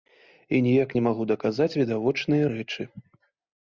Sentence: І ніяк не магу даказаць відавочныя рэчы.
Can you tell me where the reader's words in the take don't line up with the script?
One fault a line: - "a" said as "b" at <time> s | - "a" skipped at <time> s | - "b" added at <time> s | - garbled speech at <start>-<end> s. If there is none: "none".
none